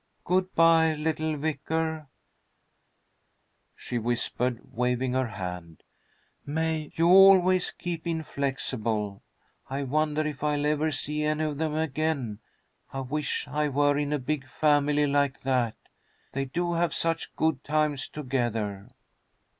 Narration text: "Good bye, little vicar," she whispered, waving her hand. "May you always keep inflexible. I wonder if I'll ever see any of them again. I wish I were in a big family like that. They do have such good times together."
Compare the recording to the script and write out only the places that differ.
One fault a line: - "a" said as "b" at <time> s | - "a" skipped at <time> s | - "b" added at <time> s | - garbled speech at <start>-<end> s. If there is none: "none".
none